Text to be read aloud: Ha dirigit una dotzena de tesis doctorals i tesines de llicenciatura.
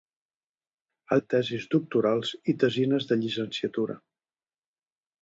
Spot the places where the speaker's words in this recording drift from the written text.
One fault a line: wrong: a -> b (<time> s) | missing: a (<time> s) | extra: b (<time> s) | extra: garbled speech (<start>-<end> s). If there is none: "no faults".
missing: dirigit una dotzena (1.2 s)